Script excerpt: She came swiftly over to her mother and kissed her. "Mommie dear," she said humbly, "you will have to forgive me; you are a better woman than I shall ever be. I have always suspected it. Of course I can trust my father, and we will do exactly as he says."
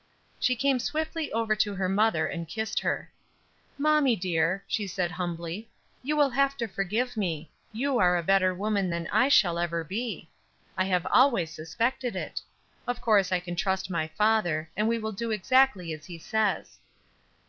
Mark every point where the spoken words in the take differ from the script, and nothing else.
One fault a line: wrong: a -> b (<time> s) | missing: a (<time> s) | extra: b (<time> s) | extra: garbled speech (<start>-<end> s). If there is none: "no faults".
no faults